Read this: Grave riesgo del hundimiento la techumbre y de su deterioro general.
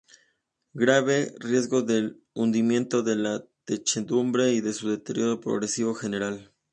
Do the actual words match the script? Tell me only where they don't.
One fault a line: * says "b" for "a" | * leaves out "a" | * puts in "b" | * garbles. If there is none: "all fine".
* puts in "de"
* puts in "progresivo"